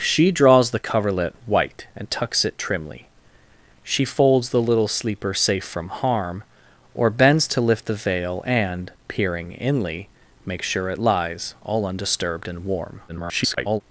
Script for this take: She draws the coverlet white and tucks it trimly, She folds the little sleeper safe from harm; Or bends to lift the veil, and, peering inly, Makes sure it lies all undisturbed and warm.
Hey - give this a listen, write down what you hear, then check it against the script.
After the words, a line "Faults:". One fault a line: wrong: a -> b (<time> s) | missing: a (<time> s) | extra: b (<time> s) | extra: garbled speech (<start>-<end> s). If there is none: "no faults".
She draws the coverlet white and tucks it trimly, She folds the little sleeper safe from harm; Or bends to lift the veil, and, peering inly, Makes sure it lies all undisturbed and warm. [garbled]
Faults:
extra: garbled speech (13.1-13.8 s)